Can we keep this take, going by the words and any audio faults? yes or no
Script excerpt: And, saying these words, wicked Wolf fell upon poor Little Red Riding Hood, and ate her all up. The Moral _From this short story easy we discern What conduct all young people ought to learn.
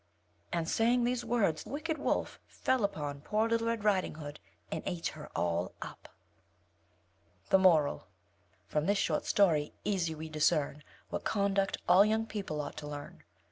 yes